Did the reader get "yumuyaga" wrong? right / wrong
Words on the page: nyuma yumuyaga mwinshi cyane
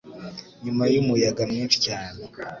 right